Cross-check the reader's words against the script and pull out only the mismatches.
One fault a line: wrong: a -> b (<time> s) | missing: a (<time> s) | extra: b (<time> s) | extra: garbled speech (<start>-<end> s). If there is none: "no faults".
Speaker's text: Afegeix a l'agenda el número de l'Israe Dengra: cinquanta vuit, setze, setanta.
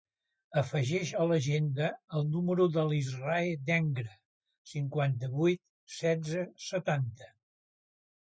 no faults